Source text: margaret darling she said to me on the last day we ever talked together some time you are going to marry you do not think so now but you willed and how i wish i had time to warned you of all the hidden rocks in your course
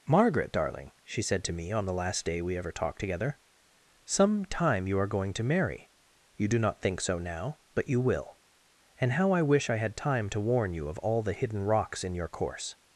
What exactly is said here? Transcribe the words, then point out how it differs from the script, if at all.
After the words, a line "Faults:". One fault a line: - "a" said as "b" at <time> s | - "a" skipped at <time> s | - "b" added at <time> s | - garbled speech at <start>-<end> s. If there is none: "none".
margaret darling she said to me on the last day we ever talked together some time you are going to marry you do not think so now but you will and how i wish i had time to warn you of all the hidden rocks in your course
Faults:
- "willed" said as "will" at 8.0 s
- "warned" said as "warn" at 10.4 s